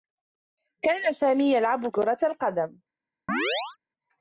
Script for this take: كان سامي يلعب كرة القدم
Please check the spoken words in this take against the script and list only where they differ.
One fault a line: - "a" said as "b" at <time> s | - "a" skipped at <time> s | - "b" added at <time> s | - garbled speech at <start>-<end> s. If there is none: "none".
none